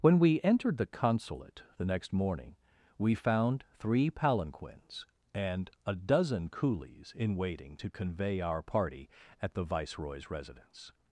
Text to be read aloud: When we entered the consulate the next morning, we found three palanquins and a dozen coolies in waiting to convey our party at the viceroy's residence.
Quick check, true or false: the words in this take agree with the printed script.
true